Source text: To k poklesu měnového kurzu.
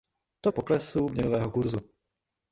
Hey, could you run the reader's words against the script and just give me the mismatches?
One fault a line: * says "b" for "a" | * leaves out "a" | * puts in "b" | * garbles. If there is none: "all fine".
all fine